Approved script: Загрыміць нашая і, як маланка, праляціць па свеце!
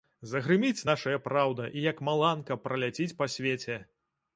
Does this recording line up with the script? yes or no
no